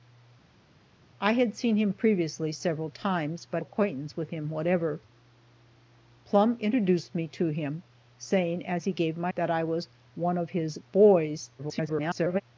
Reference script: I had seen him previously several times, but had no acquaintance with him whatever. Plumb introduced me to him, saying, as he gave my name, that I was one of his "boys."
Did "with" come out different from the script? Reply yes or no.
no